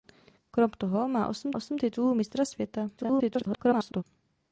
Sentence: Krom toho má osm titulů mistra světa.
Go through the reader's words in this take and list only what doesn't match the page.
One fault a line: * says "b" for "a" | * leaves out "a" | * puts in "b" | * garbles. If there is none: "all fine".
* puts in "osm"
* garbles